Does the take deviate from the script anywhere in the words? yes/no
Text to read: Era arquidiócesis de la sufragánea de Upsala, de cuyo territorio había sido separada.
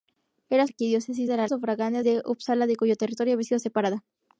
no